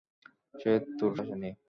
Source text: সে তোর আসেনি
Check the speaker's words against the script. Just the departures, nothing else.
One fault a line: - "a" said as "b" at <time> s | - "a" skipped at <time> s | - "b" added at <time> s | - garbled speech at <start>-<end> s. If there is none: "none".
none